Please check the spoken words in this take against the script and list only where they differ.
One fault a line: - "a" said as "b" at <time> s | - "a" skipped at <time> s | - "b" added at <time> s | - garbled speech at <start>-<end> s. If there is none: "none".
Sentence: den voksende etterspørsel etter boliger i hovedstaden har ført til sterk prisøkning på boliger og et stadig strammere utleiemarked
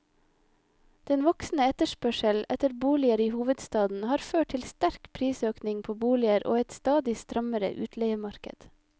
none